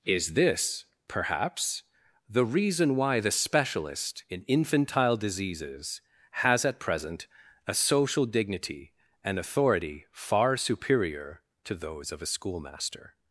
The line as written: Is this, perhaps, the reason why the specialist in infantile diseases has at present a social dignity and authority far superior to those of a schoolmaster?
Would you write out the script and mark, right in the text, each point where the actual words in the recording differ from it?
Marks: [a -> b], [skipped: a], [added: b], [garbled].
Is this, perhaps, the reason why the specialist in infantile diseases has at present a social dignity and authority far superior to those of a schoolmaster?